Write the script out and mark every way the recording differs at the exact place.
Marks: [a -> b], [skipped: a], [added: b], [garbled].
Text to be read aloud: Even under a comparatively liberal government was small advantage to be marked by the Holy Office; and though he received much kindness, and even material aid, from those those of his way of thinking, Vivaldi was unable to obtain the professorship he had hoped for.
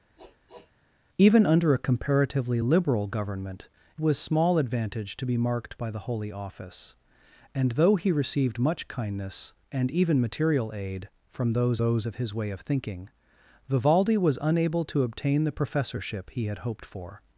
Even under a comparatively liberal government was small advantage to be marked by the Holy Office; and though he received much kindness, and even material aid, from those those of his way of thinking, Vivaldi was unable to obtain the professorship he had hoped for.